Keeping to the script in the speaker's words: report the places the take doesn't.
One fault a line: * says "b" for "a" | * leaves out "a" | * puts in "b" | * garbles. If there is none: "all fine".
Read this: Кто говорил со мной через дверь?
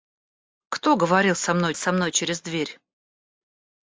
* puts in "со мной"